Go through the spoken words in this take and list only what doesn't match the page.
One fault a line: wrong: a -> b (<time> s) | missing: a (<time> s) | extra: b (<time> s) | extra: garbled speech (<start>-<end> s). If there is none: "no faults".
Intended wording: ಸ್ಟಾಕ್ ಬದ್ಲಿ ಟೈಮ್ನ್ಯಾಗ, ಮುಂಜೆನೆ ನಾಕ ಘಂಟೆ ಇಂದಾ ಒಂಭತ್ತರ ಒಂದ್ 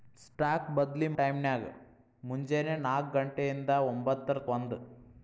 no faults